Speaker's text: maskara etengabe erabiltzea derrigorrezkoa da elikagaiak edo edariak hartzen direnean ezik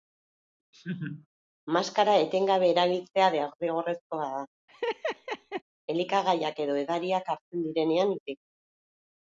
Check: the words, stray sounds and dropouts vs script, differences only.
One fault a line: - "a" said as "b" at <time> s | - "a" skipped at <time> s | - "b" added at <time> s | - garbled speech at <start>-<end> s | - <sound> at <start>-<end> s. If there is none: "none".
- laugh at 0.7-1.3 s
- laugh at 4.7-5.6 s